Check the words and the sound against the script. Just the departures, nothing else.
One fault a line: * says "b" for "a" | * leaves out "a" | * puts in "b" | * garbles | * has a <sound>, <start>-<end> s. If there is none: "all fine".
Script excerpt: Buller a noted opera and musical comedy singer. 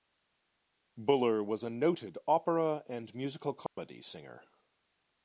* puts in "was"
* has a dropout, 3.7-3.8 s